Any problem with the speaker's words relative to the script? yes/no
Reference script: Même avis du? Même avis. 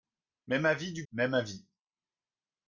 no